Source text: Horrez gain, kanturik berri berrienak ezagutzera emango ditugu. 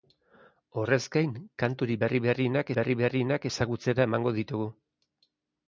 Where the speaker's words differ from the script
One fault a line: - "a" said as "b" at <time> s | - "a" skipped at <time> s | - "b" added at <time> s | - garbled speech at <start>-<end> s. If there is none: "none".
- "berri berrienak" added at 2.8 s